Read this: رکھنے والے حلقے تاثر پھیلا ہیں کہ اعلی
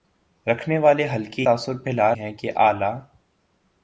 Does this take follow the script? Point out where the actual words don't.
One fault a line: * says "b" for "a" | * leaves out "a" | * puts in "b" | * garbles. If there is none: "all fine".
all fine